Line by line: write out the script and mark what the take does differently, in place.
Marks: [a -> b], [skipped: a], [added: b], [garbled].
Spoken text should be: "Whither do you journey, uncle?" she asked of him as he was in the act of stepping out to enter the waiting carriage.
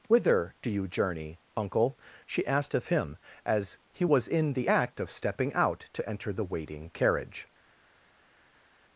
"Whither do you journey, uncle?" she asked of him as he was in the act of stepping out to enter the waiting carriage.